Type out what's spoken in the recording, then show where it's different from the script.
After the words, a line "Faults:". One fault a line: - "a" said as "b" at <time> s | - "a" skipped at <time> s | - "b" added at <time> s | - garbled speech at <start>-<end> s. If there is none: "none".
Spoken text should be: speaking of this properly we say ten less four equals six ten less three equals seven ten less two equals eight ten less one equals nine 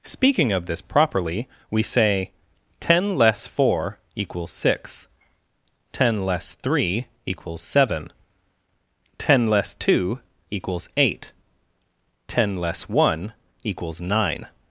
speaking of this properly we say ten less four equals six ten less three equals seven ten less two equals eight ten less one equals nine
Faults:
none